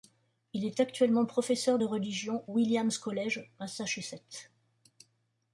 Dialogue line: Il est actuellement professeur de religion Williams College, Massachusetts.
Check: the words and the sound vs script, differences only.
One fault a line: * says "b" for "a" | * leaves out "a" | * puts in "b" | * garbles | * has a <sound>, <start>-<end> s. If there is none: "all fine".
all fine